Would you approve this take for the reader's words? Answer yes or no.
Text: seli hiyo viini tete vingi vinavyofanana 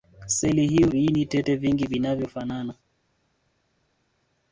yes